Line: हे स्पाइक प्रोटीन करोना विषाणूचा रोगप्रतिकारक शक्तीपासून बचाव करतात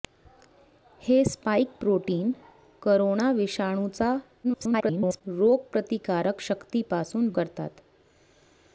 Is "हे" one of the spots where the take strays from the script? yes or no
no